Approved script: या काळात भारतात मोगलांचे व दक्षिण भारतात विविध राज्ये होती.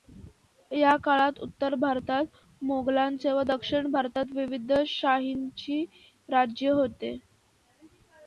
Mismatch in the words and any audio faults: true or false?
true